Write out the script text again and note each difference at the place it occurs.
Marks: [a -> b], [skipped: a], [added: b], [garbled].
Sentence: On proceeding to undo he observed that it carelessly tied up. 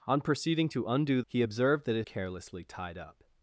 On proceeding to undo he observed that it carelessly tied up.